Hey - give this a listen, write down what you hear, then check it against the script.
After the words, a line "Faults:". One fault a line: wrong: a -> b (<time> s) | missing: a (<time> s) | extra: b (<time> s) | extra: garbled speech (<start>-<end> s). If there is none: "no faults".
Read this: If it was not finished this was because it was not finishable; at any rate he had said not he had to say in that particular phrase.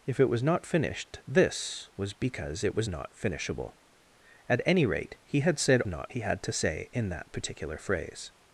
If it was not finished this was because it was not finishable; at any rate he had said not he had to say in that particular phrase.
Faults:
no faults